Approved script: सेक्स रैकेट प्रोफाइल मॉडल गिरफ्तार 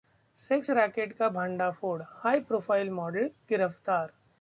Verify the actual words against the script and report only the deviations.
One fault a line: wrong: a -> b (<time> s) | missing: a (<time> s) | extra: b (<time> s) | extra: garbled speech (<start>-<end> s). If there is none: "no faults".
extra: का भंडाफोड़ हाई (1.1 s)